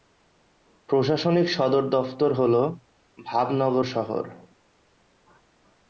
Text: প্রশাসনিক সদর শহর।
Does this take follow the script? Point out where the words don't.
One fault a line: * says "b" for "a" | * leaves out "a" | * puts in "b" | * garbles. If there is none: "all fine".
* puts in "দফতর হল ভাবনগর"